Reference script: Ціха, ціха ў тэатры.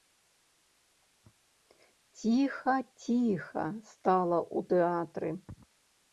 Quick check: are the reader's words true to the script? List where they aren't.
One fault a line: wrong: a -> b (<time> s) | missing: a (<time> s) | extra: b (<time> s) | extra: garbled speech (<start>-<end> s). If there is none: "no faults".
extra: стала (3.9 s)